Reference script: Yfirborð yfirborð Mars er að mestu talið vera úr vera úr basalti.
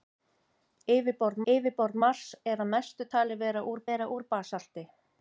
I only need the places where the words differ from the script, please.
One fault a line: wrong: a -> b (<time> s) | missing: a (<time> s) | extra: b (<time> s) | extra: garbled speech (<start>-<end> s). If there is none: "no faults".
no faults